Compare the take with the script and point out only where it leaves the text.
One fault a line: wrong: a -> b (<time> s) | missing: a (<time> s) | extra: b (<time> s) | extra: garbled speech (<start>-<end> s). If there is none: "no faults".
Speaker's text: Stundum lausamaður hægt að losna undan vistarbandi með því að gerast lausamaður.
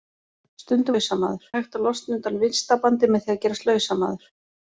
no faults